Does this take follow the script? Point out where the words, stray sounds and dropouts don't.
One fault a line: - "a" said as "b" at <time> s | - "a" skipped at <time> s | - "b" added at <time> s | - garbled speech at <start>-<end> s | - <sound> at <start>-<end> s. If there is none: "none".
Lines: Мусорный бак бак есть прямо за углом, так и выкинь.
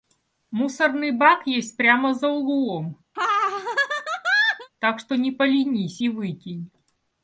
- "бак" skipped at 1.4 s
- laugh at 3.2-4.7 s
- "что не поленись" added at 5.0 s